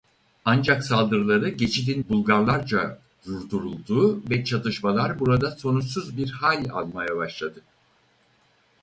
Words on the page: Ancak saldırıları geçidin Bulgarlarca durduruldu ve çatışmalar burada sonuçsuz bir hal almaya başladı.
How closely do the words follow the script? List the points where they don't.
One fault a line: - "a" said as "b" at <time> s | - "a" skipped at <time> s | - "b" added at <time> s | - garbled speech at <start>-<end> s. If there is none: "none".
none